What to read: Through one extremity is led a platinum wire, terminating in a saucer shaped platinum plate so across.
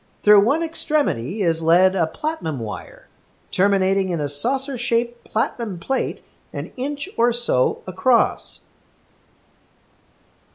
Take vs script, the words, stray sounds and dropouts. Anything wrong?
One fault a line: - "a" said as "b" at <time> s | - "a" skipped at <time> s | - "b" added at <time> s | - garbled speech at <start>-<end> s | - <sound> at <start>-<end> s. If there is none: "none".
- "an inch or" added at 6.5 s